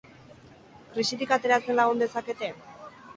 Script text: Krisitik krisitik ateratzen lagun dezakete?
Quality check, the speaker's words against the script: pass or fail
fail